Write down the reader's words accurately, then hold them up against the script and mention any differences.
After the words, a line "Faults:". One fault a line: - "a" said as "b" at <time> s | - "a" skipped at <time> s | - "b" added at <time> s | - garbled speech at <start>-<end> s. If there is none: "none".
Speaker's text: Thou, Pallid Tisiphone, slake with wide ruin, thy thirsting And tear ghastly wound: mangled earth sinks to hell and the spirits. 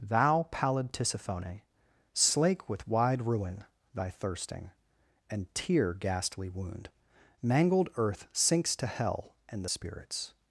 Thou, Pallid Tisiphone, slake with wide ruin, thy thirsting And tear ghastly wound: mangled earth sinks to hell and the spirits.
Faults:
none